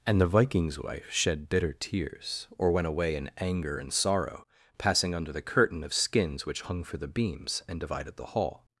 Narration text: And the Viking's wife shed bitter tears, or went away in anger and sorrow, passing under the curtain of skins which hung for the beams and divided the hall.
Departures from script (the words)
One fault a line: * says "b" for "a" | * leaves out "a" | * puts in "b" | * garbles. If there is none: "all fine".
all fine